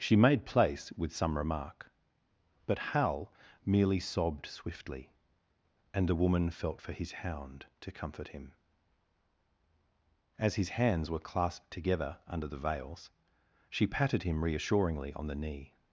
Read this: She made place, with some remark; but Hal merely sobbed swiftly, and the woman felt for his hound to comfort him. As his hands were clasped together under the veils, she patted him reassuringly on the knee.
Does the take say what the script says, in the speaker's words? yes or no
yes